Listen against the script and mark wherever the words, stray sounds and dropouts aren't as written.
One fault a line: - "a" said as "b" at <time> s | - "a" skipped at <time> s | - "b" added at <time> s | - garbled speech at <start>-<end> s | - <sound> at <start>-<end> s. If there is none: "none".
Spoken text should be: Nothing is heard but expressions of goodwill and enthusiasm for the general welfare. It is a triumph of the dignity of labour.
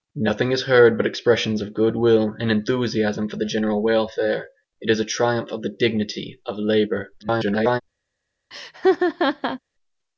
- garbled speech at 7.2-7.8 s
- laugh at 8.5-9.6 s